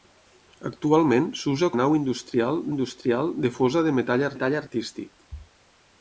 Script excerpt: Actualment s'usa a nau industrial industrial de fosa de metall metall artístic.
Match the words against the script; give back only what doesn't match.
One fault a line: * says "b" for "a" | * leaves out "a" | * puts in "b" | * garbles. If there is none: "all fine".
all fine